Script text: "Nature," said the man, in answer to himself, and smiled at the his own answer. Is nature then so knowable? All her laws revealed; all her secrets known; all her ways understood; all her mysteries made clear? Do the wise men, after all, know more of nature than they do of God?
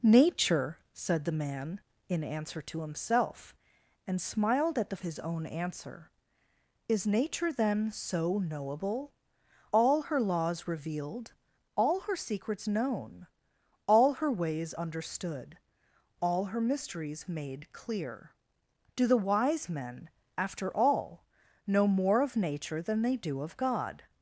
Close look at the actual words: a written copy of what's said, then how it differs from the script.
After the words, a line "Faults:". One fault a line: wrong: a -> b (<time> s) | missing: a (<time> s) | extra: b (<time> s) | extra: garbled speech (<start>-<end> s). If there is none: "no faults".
"Nature," said the man, in answer to himself, and smiled at the his own answer. Is nature then so knowable? All her laws revealed; all her secrets known; all her ways understood; all her mysteries made clear? Do the wise men, after all, know more of nature than they do of God?
Faults:
no faults